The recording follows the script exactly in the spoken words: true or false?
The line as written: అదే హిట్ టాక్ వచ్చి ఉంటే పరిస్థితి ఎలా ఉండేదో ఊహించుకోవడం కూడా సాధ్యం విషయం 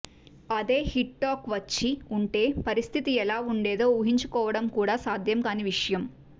false